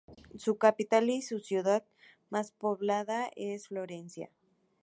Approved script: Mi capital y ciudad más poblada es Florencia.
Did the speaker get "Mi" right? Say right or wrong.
wrong